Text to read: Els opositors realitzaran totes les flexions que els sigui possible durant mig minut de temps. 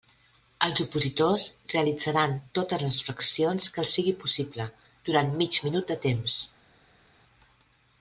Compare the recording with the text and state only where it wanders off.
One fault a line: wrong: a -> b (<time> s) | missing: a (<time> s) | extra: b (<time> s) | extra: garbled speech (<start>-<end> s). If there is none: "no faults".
no faults